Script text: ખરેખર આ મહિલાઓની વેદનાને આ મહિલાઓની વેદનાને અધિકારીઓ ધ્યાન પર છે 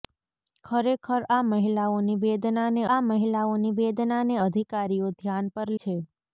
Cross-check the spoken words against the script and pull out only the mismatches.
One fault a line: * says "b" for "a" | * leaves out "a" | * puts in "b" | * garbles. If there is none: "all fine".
all fine